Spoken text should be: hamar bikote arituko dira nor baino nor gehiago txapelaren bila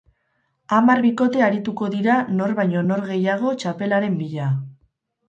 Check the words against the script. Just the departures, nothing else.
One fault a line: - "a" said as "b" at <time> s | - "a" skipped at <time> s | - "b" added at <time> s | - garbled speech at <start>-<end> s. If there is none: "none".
none